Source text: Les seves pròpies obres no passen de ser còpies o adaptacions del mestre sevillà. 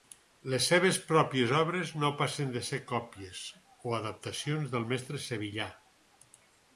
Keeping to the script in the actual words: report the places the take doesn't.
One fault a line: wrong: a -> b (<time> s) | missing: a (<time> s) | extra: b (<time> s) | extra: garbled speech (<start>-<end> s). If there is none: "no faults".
no faults